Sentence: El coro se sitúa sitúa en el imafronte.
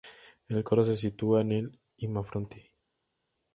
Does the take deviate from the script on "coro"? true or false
false